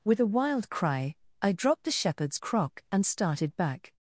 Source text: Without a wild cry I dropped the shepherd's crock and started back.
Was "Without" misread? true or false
true